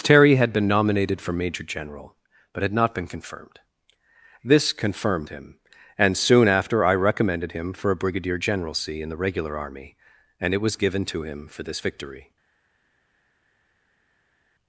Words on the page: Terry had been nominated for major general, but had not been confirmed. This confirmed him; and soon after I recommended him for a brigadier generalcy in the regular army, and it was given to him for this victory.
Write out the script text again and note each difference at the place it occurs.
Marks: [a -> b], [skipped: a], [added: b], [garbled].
Terry had been nominated for major general, but had not been confirmed. This confirmed him; and soon after I recommended him for a brigadier generalcy in the regular army, and it was given to him for this victory.